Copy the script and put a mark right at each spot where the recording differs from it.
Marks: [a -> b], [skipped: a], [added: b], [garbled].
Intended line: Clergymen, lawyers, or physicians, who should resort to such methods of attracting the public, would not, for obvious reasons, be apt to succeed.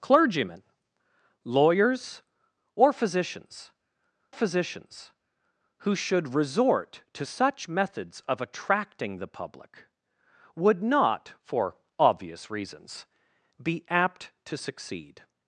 Clergymen, lawyers, or physicians, [added: physicians] who should resort to such methods of attracting the public, would not, for obvious reasons, be apt to succeed.